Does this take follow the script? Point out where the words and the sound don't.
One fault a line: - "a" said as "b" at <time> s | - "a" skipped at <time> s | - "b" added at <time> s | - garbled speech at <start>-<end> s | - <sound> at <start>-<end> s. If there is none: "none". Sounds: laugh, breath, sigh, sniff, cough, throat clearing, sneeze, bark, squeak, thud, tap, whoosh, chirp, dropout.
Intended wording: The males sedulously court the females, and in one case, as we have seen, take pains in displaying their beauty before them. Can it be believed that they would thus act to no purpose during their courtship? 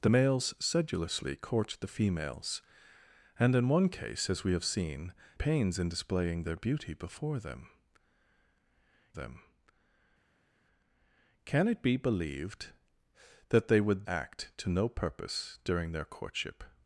- "take" skipped at 5.1 s
- "them" added at 9.1 s
- "thus" skipped at 14.1 s